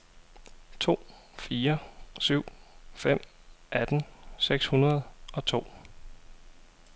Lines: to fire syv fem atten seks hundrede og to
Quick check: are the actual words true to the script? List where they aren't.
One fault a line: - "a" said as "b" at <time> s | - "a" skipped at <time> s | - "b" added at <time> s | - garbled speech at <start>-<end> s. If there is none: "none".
none